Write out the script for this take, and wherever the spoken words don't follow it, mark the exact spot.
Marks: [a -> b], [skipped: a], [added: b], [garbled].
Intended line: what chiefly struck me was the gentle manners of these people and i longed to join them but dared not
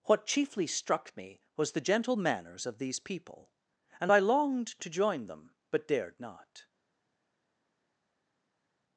what chiefly struck me was the gentle manners of these people and i longed to join them but dared not